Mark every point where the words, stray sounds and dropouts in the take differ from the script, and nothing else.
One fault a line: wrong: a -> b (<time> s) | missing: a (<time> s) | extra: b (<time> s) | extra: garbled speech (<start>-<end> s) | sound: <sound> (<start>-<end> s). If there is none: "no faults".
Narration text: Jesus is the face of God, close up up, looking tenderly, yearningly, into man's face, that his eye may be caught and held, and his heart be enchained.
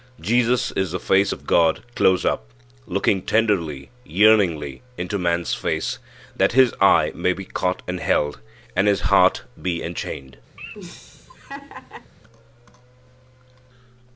missing: up (2.4 s)
sound: laugh (10.6-12.1 s)